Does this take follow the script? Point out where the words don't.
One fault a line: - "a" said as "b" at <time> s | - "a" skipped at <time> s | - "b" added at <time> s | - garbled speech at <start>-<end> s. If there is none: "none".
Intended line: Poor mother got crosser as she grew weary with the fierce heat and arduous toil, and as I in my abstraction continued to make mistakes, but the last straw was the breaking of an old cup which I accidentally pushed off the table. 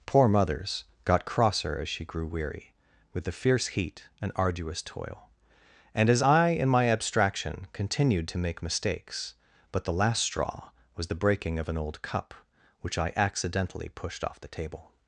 - "mother" said as "mothers" at 0.3 s